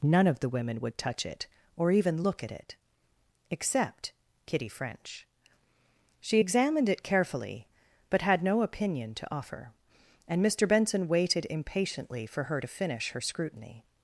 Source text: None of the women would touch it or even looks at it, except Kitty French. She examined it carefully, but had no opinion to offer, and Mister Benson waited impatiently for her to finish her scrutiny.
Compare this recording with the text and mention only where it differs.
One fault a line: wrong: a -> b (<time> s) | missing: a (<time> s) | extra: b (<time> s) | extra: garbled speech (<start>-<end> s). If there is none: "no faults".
wrong: looks -> look (2.2 s)